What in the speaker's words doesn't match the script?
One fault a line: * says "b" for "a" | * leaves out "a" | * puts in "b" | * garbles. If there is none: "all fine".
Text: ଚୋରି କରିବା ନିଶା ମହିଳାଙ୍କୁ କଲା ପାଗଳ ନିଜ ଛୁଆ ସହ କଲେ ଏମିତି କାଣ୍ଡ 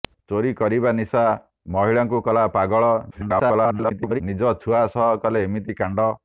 * garbles